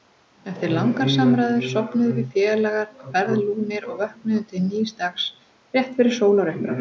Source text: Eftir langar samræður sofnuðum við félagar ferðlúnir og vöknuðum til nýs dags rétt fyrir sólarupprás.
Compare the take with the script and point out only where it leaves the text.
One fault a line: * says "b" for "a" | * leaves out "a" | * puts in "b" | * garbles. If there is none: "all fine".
all fine